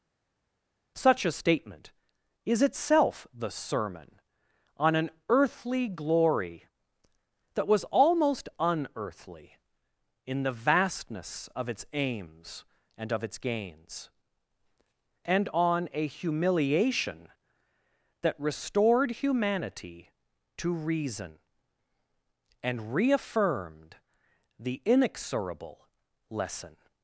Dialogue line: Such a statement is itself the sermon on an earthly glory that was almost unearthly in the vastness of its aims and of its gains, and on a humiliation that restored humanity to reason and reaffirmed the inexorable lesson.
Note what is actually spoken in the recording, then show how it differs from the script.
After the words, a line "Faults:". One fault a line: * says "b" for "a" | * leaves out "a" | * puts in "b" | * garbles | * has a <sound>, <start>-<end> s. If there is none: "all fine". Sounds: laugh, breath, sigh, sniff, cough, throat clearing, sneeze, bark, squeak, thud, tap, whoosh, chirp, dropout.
Such a statement is itself the sermon on an earthly glory that was almost unearthly in the vastness of its aims and of its gains, and on a humiliation that restored humanity to reason and reaffirmed the inexorable lesson.
Faults:
all fine